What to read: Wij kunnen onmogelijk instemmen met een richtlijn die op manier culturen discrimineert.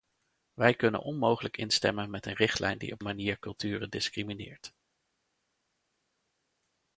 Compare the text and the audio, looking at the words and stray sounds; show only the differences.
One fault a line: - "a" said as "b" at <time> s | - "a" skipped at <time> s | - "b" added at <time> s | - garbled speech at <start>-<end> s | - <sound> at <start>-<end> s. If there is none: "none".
none